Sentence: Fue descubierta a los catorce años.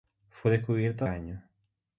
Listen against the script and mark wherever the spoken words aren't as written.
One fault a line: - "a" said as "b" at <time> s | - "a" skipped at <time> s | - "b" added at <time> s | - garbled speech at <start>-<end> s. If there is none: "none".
- "los catorce" skipped at 1.1 s